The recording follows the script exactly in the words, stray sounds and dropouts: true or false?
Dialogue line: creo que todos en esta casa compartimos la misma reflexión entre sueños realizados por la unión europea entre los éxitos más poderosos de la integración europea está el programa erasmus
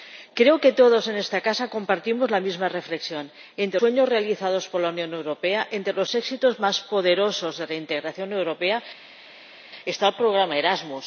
true